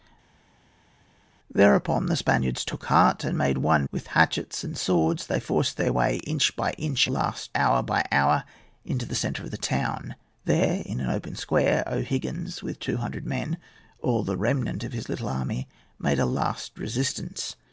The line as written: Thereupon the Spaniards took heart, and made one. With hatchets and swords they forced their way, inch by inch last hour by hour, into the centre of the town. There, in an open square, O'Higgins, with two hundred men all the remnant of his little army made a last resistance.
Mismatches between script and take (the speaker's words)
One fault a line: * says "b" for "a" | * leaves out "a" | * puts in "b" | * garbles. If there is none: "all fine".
all fine